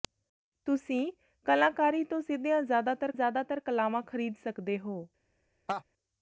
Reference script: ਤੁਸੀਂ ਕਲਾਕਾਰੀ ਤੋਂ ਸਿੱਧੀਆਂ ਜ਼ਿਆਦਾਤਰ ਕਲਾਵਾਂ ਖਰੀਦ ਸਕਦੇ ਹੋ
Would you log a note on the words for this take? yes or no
yes